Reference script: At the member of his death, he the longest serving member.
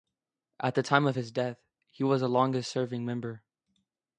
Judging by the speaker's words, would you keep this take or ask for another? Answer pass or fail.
fail